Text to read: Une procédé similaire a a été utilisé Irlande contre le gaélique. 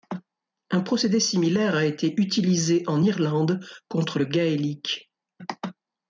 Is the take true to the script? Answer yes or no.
no